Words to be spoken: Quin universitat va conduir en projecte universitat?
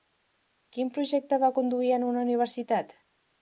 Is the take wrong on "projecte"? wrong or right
wrong